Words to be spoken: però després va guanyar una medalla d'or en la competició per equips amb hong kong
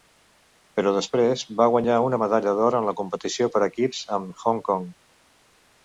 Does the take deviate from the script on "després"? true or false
false